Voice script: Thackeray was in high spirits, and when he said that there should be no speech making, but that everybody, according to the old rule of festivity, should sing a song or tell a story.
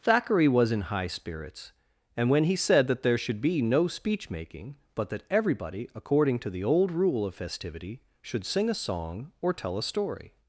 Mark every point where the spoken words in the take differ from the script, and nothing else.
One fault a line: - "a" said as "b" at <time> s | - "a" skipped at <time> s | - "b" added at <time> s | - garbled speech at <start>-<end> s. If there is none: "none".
none